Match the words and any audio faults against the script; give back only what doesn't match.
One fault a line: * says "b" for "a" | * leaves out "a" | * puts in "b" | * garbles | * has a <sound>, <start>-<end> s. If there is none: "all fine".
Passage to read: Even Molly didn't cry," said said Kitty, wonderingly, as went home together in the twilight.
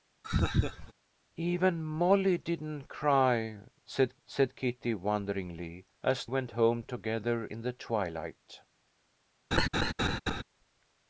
* has a laugh, 0.2-0.9 s
* has a laugh, 9.5-10.4 s